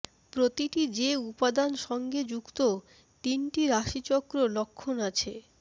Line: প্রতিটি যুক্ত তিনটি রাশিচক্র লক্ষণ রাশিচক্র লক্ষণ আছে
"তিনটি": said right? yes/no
yes